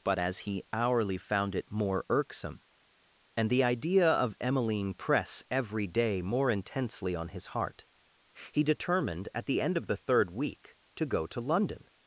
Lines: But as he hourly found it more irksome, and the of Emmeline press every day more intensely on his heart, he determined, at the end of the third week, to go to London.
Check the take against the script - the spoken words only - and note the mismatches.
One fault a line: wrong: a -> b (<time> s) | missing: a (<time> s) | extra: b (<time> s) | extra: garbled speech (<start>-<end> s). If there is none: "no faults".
extra: idea (3.6 s)